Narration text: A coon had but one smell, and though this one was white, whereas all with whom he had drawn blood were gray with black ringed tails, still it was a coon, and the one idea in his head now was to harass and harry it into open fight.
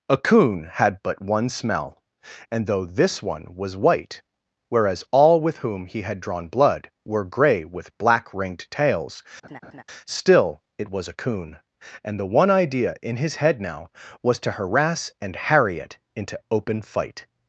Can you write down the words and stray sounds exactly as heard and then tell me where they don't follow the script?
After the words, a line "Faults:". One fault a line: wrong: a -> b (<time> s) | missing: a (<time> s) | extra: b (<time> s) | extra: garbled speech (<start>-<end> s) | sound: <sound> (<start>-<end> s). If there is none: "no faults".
A coon had but one smell, and though this one was white, whereas all with whom he had drawn blood were gray with black ringed tails, still it was a coon, and the one idea in his head now was to harass and harry it into open fight.
Faults:
sound: laugh (9.4-9.8 s)